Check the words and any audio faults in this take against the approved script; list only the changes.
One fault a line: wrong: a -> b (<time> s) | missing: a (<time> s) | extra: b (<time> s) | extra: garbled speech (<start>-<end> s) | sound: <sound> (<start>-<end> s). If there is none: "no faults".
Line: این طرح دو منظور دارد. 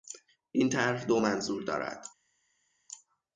no faults